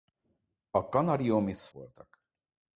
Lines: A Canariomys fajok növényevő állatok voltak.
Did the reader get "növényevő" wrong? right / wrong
wrong